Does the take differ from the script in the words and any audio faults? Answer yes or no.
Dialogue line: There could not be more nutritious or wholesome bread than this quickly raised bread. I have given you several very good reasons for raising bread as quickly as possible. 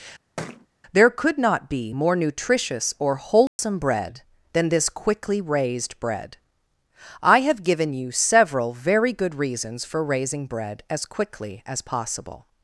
yes